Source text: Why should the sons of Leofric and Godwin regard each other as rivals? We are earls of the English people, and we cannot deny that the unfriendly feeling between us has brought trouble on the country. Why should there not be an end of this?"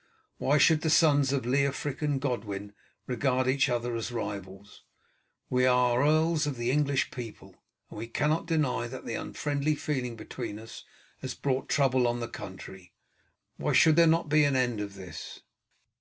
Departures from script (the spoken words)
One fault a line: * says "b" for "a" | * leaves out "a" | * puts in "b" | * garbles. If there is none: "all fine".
all fine